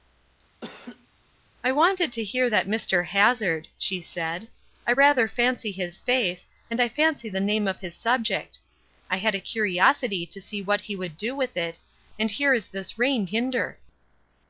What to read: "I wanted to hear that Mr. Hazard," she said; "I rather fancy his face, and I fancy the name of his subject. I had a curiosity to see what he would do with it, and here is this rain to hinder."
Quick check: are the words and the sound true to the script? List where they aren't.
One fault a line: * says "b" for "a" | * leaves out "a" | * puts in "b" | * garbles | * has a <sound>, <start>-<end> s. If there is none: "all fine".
* has a laugh, 0.6-1.1 s
* leaves out "to"